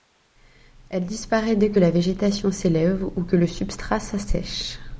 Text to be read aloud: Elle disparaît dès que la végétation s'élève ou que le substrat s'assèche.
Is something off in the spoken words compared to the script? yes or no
no